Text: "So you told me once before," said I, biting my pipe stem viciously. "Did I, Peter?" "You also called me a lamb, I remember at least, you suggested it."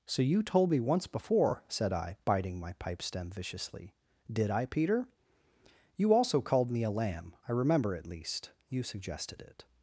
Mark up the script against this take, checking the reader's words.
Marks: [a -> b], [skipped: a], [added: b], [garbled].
"So you told me once before," said I, biting my pipe stem viciously. "Did I, Peter?" "You also called me a lamb, I remember at least, you suggested it."